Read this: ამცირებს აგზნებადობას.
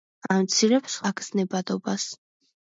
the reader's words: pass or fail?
pass